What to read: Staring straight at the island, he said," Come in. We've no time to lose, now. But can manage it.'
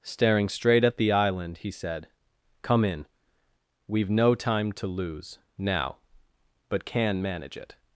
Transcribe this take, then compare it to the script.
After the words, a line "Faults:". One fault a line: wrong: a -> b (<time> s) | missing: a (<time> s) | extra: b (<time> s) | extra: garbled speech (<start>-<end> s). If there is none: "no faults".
Staring straight at the island, he said," Come in. We've no time to lose, now. But can manage it.'
Faults:
no faults